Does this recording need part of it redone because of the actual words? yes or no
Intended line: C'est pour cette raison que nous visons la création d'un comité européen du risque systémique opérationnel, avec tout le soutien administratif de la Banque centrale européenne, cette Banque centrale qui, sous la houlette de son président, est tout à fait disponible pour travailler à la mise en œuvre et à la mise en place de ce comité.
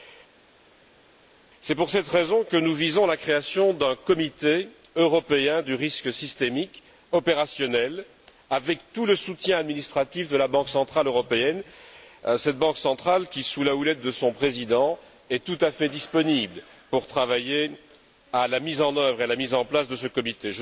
no